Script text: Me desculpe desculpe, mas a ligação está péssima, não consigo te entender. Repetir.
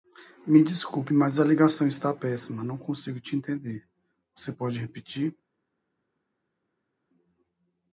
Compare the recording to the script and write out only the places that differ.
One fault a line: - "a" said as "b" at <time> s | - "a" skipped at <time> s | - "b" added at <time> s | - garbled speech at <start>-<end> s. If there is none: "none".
- "desculpe" skipped at 1.1 s
- "Você pode" added at 4.3 s